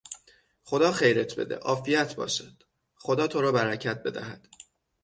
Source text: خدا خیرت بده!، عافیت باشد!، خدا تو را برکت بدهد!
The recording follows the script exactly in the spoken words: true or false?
true